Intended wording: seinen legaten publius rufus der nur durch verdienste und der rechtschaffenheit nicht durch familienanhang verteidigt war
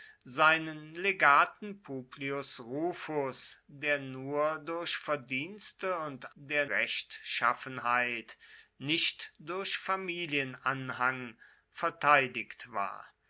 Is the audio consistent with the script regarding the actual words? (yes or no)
yes